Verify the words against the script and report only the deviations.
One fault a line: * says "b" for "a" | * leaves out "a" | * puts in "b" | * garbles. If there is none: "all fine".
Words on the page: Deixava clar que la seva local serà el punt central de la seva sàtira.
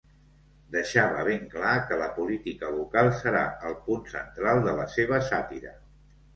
* puts in "ben"
* says "política" for "seva"